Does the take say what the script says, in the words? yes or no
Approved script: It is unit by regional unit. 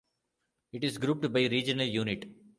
no